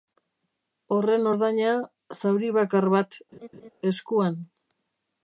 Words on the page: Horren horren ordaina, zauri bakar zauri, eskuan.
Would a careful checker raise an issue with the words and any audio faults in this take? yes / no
yes